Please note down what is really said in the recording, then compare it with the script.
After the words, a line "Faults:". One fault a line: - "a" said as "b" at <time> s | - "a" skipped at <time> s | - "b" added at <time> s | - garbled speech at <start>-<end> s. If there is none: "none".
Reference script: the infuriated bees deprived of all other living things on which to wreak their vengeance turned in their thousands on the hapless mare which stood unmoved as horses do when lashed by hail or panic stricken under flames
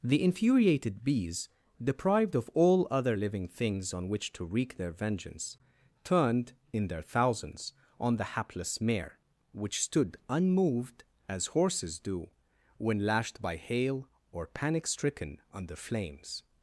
the infuriated bees deprived of all other living things on which to wreak their vengeance turned in their thousands on the hapless mare which stood unmoved as horses do when lashed by hail or panic stricken under flames
Faults:
none